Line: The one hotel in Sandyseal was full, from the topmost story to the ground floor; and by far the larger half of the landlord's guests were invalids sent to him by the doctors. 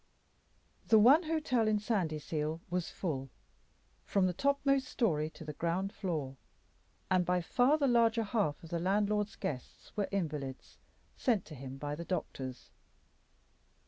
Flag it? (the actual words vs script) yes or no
no